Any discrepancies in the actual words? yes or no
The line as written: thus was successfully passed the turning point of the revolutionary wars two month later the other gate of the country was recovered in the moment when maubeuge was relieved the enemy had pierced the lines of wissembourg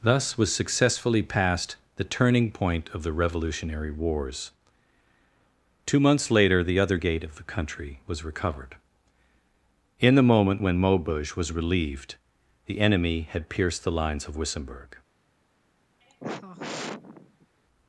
yes